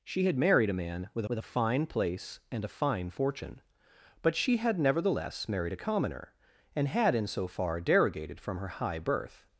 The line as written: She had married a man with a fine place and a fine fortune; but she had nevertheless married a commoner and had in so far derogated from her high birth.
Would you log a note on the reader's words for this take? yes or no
yes